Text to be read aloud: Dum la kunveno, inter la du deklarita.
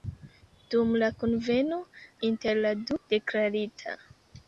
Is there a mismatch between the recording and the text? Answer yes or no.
no